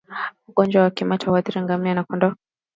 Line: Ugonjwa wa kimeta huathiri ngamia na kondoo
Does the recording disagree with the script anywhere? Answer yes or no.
no